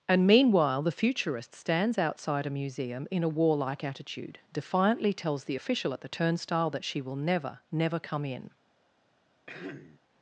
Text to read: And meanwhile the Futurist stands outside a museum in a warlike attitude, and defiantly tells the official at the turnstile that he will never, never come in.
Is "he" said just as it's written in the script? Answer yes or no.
no